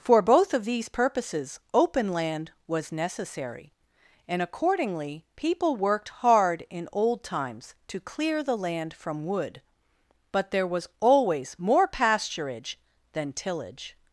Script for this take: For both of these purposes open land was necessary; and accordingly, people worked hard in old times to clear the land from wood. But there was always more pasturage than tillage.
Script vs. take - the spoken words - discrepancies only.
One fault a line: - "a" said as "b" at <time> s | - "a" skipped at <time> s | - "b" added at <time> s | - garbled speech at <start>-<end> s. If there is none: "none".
none